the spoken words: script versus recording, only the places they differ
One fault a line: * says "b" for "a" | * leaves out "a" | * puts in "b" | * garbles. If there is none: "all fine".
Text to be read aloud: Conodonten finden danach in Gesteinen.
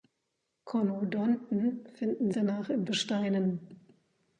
all fine